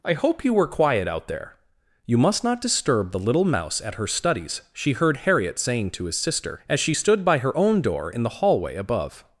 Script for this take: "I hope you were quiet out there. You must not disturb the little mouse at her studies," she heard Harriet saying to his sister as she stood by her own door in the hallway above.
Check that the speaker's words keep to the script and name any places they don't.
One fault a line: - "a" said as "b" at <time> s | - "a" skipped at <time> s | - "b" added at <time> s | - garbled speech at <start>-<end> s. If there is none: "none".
none